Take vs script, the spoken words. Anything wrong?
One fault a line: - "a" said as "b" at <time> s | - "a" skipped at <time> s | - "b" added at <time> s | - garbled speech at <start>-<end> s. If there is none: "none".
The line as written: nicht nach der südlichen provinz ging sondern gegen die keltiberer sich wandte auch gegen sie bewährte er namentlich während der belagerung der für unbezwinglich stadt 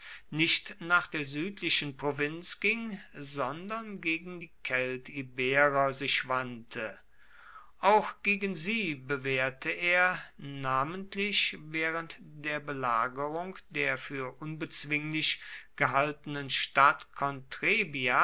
- "gehaltenen" added at 15.7 s